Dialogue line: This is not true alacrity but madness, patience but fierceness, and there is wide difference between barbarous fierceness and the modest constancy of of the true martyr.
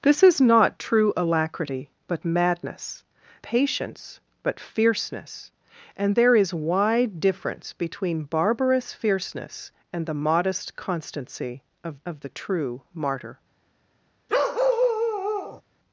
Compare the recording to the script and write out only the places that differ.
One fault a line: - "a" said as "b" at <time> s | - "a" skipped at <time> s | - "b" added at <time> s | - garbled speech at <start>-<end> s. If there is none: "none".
none